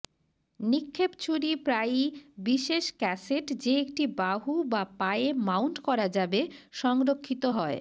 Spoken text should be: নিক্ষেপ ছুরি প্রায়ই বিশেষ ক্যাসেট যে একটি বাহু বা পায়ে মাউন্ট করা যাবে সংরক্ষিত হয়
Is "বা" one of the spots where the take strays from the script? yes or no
no